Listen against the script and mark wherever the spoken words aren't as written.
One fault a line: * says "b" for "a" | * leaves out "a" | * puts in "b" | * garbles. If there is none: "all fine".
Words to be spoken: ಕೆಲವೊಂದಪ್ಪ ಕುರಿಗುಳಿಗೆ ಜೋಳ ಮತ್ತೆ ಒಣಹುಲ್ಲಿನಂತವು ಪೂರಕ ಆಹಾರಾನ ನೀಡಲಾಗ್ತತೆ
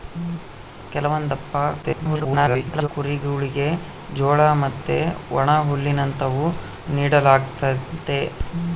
* garbles
* leaves out "ಪೂರಕ ಆಹಾರಾನ"